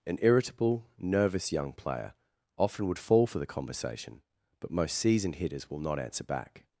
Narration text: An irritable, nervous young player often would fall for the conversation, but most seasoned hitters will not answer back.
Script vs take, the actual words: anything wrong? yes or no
no